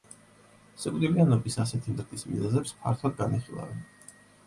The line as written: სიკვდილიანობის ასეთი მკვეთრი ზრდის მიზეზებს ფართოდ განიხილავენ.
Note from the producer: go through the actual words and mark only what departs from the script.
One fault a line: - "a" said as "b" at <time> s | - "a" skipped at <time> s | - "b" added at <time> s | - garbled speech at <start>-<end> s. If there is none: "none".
- "მკვეთრი" skipped at 1.9 s